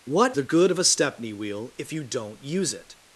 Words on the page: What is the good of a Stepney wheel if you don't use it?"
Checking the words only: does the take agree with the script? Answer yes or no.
no